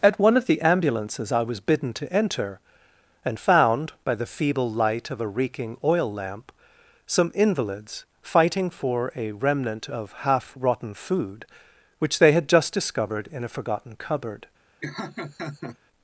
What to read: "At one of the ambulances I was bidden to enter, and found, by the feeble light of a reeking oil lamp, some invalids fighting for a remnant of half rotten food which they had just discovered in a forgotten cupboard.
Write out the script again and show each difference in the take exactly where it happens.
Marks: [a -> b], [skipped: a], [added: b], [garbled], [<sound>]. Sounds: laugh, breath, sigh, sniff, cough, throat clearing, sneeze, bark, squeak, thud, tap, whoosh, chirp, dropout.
"At one of the ambulances I was bidden to enter, and found, by the feeble light of a reeking oil lamp, some invalids fighting for a remnant of half rotten food which they had just discovered in a forgotten cupboard. [laugh]